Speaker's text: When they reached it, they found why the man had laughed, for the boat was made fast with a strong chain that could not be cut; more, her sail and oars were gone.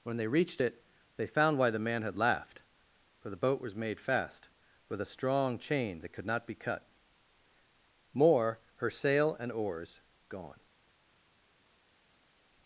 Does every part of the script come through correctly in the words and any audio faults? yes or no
no